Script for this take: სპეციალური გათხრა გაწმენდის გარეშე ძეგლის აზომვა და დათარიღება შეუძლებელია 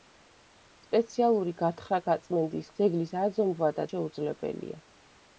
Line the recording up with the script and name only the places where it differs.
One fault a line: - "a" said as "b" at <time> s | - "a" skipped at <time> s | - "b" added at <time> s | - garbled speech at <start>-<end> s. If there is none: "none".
- "გარეშე" skipped at 2.7 s
- "დათარიღება" skipped at 3.9 s